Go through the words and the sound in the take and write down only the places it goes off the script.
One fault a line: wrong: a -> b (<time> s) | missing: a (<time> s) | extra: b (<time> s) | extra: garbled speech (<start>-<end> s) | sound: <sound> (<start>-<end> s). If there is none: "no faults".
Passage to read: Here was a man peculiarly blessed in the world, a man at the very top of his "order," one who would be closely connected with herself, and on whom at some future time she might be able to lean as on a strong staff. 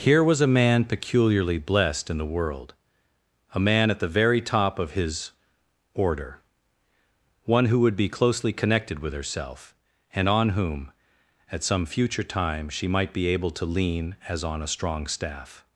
no faults